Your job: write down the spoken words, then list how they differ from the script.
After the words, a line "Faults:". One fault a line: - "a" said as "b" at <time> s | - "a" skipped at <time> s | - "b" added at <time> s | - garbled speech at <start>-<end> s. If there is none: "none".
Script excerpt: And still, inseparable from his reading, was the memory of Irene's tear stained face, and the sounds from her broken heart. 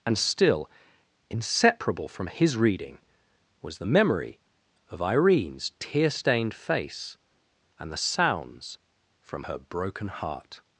And still, inseparable from his reading, was the memory of Irene's tear stained face, and the sounds from her broken heart.
Faults:
none